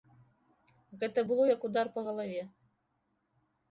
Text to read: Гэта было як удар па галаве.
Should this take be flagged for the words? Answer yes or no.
no